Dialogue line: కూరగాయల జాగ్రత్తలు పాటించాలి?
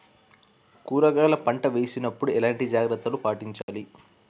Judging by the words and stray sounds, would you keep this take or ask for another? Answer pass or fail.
fail